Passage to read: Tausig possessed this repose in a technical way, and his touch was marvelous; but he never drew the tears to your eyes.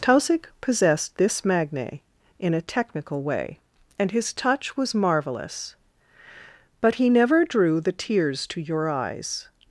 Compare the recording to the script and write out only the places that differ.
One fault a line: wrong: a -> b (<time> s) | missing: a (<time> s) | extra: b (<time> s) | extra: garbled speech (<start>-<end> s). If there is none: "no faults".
wrong: repose -> magne (1.4 s)